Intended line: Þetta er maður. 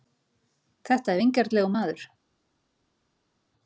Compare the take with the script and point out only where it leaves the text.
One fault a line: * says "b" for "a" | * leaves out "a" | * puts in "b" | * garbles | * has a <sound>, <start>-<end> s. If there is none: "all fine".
* puts in "vingjarnlegur"